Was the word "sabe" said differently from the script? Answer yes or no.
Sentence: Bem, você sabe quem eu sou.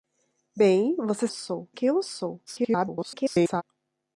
yes